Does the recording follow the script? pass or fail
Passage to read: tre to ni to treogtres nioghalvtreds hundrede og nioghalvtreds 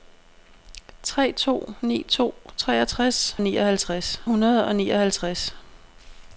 pass